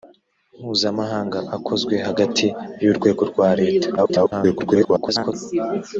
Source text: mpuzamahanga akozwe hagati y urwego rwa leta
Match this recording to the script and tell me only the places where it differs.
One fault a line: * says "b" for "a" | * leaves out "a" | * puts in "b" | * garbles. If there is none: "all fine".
* garbles